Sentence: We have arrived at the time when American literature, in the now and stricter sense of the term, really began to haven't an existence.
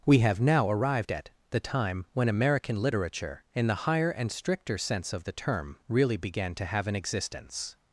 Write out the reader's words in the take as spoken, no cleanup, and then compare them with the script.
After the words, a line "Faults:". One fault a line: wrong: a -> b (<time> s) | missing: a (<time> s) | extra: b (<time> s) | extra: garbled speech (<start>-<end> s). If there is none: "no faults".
We have now arrived at the time when American literature, in the higher and stricter sense of the term, really began to have an existence.
Faults:
extra: now (0.4 s)
wrong: now -> higher (3.7 s)
wrong: haven't -> have (6.6 s)